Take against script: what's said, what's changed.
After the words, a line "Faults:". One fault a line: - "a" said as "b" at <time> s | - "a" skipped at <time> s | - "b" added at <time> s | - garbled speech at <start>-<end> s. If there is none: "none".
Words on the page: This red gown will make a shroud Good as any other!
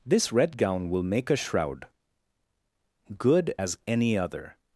This red gown will make a shroud Good as any other!
Faults:
none